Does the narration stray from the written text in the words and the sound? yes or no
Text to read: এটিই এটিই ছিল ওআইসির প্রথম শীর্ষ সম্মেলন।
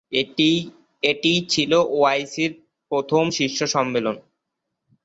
yes